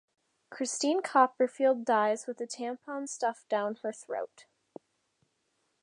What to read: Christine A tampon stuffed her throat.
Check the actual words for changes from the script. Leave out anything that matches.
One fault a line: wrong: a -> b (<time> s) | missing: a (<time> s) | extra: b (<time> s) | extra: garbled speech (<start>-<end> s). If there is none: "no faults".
extra: Copperfield dies with (1.0 s)
extra: down (3.5 s)